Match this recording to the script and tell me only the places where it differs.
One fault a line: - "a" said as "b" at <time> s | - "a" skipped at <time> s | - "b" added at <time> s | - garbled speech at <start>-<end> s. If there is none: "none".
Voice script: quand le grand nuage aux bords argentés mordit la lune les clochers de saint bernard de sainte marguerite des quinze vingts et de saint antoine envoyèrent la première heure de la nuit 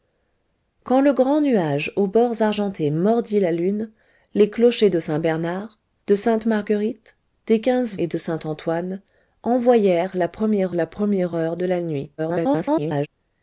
- "vingts" skipped at 8.0 s
- "la première" added at 10.7 s
- garbled speech at 12.2-13.1 s